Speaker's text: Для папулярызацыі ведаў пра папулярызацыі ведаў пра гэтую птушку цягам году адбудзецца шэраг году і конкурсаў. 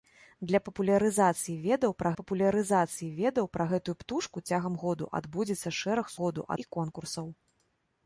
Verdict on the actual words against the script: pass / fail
pass